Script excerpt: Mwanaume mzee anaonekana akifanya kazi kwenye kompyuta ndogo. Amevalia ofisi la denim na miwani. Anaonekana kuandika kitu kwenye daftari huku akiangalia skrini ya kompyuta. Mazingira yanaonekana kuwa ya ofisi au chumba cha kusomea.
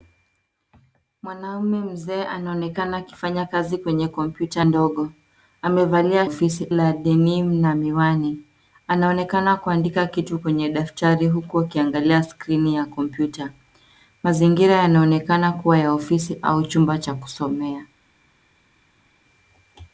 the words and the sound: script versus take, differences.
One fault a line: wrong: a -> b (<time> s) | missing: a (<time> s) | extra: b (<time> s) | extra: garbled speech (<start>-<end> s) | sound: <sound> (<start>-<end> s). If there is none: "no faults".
no faults